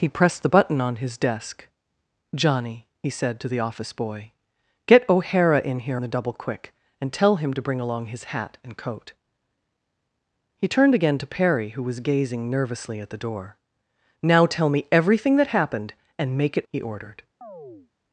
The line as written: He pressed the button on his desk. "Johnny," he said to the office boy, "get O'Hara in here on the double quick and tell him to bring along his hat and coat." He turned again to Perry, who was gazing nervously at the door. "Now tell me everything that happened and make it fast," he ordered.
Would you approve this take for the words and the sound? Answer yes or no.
no